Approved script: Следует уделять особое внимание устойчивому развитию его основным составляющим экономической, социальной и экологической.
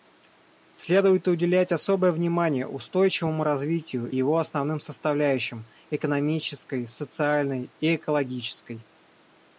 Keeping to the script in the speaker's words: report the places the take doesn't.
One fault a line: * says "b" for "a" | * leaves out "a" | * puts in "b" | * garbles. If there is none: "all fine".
all fine